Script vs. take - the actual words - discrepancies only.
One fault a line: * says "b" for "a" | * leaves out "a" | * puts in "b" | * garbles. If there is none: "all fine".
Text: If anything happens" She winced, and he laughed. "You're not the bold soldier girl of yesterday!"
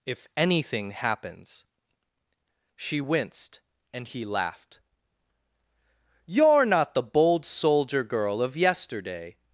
all fine